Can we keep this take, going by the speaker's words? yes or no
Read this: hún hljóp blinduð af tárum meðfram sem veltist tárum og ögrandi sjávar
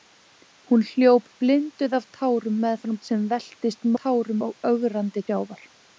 yes